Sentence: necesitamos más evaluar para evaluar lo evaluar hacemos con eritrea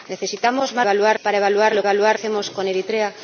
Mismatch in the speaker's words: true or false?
false